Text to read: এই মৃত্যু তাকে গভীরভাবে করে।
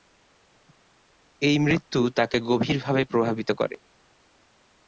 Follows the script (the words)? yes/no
no